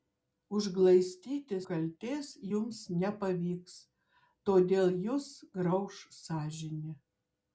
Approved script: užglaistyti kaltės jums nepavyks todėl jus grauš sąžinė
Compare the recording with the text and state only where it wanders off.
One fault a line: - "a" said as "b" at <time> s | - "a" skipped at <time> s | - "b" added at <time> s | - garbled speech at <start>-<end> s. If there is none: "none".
none